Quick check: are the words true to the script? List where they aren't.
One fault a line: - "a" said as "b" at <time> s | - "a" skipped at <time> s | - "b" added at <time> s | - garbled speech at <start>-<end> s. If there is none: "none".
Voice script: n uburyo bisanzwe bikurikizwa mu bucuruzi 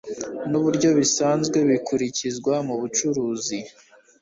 none